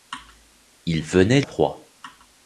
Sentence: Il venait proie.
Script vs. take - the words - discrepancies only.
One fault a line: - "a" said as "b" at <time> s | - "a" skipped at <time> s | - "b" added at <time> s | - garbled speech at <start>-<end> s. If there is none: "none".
none